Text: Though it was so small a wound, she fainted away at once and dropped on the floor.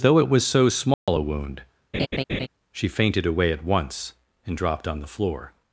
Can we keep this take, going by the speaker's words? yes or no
yes